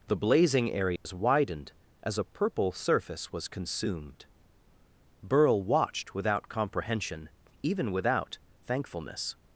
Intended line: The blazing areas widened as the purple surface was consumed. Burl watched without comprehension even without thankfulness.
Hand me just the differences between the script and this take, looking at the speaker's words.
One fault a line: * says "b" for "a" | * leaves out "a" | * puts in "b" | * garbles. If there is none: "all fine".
* says "a" for "the"